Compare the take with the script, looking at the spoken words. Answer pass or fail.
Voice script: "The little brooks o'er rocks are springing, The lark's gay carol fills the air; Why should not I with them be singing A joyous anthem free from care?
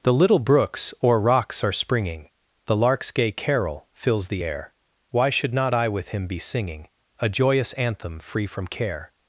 fail